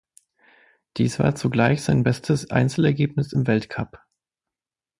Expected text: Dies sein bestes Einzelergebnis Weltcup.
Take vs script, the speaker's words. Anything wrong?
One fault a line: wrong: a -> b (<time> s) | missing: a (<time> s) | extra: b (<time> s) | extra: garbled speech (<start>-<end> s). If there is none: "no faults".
extra: war zugleich (1.2 s)
extra: im (3.3 s)